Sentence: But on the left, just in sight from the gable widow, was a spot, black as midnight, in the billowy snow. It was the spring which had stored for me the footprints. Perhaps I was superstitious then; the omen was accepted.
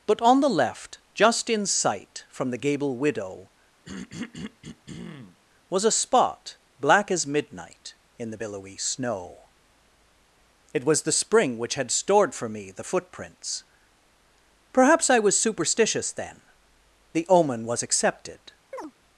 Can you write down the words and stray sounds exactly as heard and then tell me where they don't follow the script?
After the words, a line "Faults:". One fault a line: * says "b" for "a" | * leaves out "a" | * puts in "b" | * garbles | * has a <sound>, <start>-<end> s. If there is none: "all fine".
But on the left, just in sight from the gable widow, was a spot, black as midnight, in the billowy snow. It was the spring which had stored for me the footprints. Perhaps I was superstitious then; the omen was accepted.
Faults:
* has a throat clearing, 3.8-5.4 s
* has a chirp, 18.7-18.9 s